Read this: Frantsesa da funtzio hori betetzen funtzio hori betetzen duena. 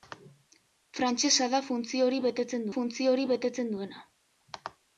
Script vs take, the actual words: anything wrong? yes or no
no